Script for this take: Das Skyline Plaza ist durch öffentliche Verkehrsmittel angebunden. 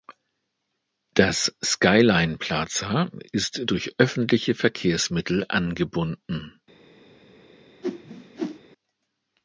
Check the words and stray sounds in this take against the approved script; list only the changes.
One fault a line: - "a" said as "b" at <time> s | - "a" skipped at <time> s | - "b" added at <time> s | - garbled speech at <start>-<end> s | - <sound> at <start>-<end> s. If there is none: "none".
- whoosh at 7.8-8.6 s